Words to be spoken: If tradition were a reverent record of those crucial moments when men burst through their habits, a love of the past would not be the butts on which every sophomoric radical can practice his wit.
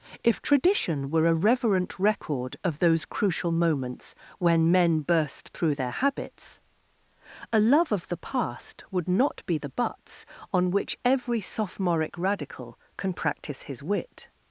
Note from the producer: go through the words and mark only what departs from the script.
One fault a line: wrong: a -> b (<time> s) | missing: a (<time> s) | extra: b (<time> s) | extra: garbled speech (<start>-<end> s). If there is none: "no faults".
no faults